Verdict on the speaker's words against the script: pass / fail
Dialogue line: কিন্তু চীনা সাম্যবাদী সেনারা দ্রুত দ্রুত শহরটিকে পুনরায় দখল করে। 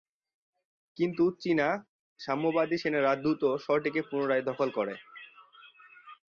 fail